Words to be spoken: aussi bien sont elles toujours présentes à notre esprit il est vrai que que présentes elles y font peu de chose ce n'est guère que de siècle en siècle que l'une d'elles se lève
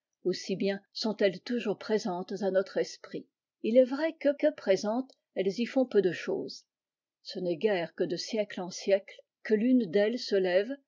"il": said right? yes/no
yes